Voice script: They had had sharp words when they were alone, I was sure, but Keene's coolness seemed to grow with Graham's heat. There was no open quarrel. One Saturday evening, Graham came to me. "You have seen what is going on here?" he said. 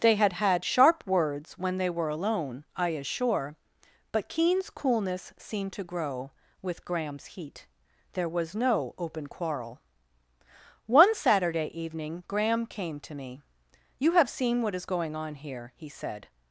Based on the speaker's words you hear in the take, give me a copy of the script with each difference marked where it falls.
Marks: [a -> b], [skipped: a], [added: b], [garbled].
They had had sharp words when they were alone, I [was -> is] sure, but Keene's coolness seemed to grow with Graham's heat. There was no open quarrel. One Saturday evening, Graham came to me. "You have seen what is going on here?" he said.